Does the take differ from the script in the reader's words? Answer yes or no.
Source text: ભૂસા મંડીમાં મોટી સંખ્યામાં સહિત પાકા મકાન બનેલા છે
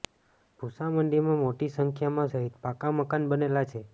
no